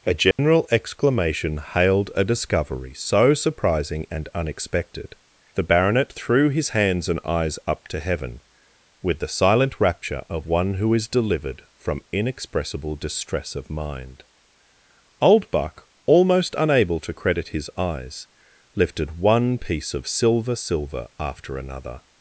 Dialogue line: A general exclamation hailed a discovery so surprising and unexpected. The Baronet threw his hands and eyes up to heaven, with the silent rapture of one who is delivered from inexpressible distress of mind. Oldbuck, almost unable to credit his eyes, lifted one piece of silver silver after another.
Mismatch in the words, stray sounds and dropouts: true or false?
true